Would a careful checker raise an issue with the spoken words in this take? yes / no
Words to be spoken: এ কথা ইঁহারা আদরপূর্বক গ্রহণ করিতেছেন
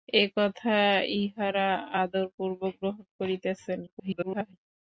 yes